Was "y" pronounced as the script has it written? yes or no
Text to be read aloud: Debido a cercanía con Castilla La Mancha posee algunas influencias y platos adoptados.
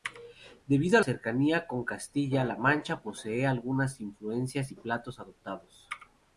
yes